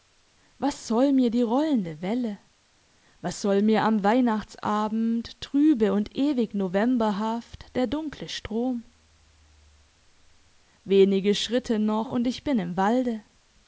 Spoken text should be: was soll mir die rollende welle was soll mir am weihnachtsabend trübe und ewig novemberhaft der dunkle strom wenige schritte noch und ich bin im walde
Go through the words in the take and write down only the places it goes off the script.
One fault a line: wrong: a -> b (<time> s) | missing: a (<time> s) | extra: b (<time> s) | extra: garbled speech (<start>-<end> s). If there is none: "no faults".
no faults